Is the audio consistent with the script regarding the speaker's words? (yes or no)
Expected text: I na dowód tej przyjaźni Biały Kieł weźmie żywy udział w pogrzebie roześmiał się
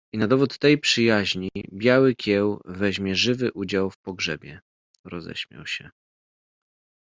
yes